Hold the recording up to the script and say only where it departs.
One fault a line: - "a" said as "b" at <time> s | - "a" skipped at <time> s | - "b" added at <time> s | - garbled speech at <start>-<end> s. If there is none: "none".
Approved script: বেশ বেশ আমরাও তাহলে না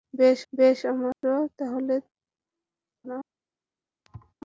none